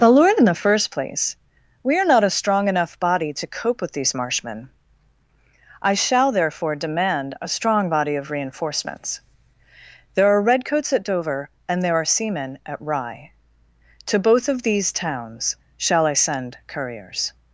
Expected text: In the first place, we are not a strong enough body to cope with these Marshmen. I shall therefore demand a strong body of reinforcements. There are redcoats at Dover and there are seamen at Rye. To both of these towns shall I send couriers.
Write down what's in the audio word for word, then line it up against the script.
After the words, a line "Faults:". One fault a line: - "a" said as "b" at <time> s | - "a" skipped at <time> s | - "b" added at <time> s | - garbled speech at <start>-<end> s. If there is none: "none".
the lord In the first place, we are not a strong enough body to cope with these Marshmen. I shall therefore demand a strong body of reinforcements. There are redcoats at Dover and there are seamen at Rye. To both of these towns shall I send couriers.
Faults:
- "the lord" added at 0.0 s